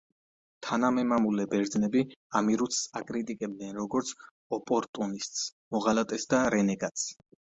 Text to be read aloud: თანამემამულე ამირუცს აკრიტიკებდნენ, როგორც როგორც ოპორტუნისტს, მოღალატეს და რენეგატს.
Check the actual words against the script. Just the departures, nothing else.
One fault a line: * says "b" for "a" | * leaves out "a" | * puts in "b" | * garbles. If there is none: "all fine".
* puts in "ბერძნები"
* leaves out "როგორც"